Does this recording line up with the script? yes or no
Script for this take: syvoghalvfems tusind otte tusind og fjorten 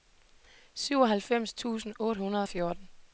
no